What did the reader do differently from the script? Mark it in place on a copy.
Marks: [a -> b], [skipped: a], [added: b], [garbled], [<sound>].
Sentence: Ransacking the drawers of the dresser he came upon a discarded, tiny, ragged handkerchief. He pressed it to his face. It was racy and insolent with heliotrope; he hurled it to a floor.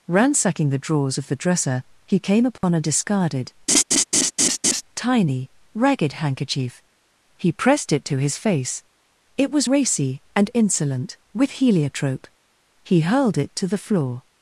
Ransacking the drawers of the dresser he came upon [dropout] a discarded, [laugh] tiny, ragged handkerchief. He pressed it to his face. It was racy and insolent with heliotrope; he hurled it to [a -> the] floor.